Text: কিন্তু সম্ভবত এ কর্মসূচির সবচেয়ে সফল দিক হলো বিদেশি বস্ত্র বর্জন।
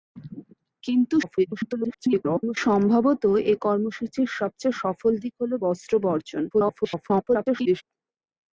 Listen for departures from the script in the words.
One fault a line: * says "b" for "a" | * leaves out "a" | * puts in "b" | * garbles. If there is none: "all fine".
* garbles
* leaves out "বিদেশি"
* garbles